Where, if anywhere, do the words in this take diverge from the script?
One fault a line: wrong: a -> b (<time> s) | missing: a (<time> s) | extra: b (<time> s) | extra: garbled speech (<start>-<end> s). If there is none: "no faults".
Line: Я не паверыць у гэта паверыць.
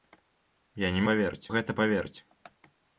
no faults